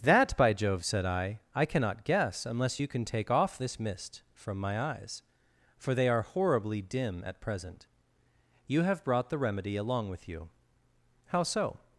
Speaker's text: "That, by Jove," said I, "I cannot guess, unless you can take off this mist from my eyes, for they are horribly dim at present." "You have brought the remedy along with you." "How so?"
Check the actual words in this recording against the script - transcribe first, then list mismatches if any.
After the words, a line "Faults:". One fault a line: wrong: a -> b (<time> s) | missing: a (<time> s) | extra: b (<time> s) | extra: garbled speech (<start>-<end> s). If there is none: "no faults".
"That, by Jove," said I, "I cannot guess, unless you can take off this mist from my eyes, for they are horribly dim at present." "You have brought the remedy along with you." "How so?"
Faults:
no faults